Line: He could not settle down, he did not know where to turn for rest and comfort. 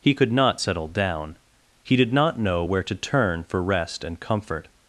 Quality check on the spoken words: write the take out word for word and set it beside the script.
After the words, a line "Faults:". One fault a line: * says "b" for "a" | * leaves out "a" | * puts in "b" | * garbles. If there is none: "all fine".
He could not settle down, he did not know where to turn for rest and comfort.
Faults:
all fine